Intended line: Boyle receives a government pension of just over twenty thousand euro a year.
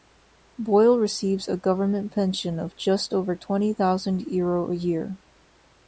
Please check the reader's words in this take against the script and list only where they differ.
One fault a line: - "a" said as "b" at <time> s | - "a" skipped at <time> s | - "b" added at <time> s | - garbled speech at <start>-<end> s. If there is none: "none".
none